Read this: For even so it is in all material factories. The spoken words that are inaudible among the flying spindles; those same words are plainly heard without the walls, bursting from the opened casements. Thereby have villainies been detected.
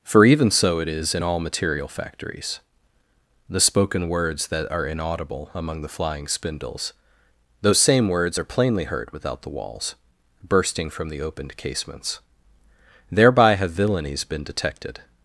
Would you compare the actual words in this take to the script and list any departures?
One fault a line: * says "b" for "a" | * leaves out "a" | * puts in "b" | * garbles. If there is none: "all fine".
all fine